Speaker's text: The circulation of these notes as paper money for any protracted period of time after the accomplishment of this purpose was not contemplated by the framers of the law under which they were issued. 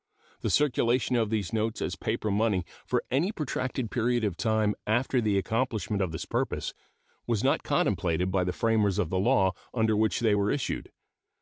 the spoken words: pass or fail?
pass